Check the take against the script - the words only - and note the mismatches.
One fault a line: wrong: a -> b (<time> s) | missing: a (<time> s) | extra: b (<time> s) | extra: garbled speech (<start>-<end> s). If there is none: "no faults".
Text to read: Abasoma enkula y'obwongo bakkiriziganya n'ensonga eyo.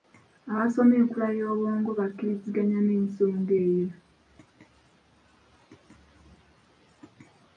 no faults